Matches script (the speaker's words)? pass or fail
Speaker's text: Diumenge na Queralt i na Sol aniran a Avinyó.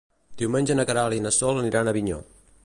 pass